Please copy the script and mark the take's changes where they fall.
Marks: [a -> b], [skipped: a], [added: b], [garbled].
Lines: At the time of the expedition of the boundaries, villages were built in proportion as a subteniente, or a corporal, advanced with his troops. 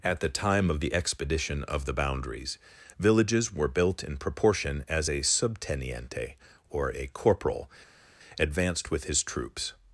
At the time of the expedition of the boundaries, villages were built in proportion as a subteniente, or a corporal, advanced with his troops.